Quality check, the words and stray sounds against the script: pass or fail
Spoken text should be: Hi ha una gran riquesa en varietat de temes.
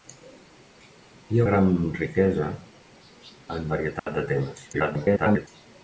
fail